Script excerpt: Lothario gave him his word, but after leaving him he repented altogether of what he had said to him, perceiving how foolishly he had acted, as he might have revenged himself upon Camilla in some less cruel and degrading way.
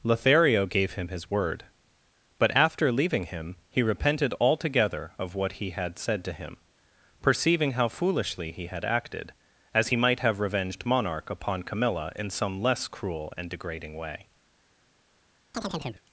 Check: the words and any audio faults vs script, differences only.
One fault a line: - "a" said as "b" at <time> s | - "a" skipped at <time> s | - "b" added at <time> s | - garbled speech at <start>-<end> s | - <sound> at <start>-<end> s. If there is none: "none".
- "himself" said as "monarch" at 10.8 s
- chirp at 15.5-16.0 s